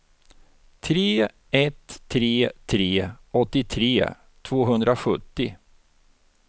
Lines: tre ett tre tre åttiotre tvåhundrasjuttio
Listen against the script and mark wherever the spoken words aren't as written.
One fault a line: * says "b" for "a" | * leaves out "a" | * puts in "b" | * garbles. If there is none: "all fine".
all fine